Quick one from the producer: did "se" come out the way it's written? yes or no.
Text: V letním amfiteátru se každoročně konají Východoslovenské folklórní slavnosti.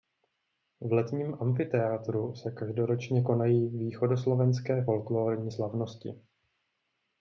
yes